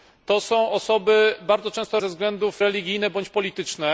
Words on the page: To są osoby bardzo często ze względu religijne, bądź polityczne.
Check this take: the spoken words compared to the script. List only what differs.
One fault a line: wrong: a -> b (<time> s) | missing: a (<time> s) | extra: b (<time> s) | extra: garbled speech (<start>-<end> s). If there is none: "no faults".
no faults